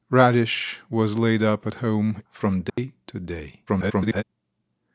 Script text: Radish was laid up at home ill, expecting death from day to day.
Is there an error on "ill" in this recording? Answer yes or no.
yes